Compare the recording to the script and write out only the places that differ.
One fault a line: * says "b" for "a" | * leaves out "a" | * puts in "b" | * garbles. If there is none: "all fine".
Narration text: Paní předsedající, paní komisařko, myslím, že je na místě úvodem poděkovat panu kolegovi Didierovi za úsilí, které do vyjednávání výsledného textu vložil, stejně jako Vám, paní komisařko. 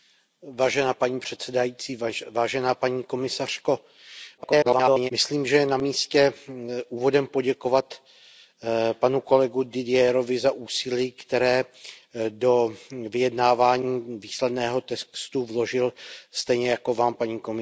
* garbles